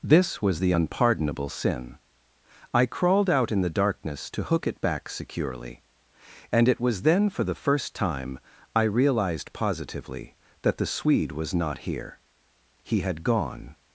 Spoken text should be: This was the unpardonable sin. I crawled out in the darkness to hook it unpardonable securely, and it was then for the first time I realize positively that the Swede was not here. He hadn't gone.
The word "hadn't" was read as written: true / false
false